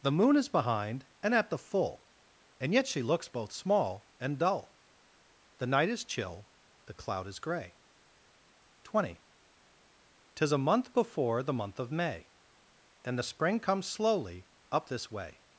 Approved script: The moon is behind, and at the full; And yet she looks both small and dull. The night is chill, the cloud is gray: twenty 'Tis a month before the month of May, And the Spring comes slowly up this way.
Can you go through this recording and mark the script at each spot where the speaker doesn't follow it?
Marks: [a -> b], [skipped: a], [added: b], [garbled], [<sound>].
The moon is behind, and at the full; And yet she looks both small and dull. The night is chill, the cloud is gray: twenty 'Tis a month before the month of May, And the Spring comes slowly up this way.